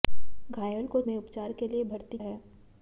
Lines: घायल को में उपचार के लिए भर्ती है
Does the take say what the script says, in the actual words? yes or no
yes